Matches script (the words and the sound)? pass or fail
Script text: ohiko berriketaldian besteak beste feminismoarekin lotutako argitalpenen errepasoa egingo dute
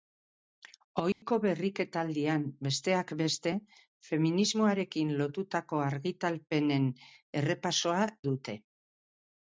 fail